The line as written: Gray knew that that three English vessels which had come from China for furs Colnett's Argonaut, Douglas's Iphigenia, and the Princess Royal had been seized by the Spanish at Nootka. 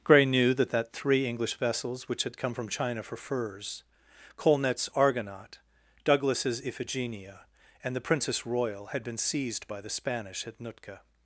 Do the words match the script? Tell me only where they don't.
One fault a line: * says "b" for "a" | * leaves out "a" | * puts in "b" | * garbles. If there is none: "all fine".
all fine